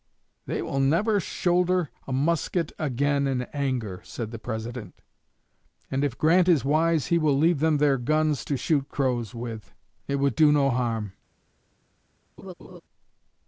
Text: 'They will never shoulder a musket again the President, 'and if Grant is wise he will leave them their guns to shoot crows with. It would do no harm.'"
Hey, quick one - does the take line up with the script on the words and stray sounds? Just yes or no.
no